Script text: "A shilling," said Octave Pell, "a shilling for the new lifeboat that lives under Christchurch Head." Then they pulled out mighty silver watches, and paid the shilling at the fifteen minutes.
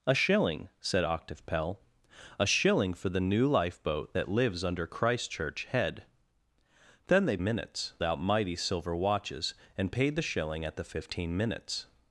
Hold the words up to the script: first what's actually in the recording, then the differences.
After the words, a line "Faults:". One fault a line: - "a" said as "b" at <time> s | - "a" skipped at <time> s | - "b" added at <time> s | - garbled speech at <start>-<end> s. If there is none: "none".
"A shilling," said Octave Pell, "a shilling for the new lifeboat that lives under Christchurch Head." Then they minutes out mighty silver watches, and paid the shilling at the fifteen minutes.
Faults:
- "pulled" said as "minutes" at 7.4 s